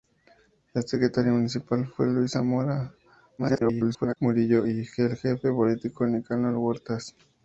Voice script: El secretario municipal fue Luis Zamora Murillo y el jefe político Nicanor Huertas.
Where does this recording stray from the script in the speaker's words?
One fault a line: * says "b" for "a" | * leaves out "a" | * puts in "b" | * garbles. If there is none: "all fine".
* garbles